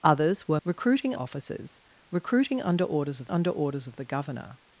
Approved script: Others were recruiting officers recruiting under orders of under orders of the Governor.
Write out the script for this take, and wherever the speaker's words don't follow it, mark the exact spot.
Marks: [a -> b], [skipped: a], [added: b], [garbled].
Others were recruiting officers recruiting under orders of under orders of the Governor.